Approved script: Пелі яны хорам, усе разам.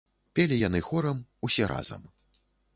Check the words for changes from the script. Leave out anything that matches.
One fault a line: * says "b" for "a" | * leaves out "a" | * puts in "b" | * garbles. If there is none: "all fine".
all fine